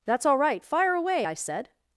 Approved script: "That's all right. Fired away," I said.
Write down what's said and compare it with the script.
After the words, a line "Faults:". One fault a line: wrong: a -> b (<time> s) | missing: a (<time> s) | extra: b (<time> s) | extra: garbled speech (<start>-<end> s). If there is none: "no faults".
"That's all right. Fire away," I said.
Faults:
wrong: Fired -> Fire (0.6 s)